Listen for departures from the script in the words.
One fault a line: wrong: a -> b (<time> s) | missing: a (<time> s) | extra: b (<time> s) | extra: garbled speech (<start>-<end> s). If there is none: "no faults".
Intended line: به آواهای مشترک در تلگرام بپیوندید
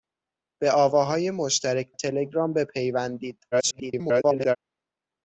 missing: در (1.9 s)
extra: garbled speech (3.5-4.6 s)